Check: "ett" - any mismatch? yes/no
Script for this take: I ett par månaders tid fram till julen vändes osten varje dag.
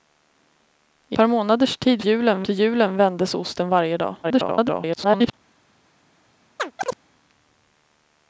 yes